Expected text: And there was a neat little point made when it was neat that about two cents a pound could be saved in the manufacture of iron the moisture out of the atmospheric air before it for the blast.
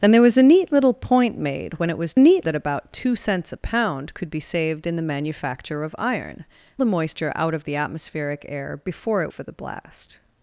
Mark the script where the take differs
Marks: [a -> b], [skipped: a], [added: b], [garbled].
And there was a neat little point made when it was neat that about two cents a pound could be saved in the manufacture of iron the moisture out of the atmospheric air before it for the blast.